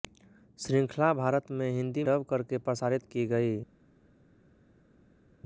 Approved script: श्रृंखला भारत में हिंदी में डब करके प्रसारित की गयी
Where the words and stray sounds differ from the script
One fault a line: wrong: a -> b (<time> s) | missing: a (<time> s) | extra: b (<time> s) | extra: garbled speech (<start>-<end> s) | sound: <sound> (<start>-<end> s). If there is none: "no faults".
missing: में (2.0 s)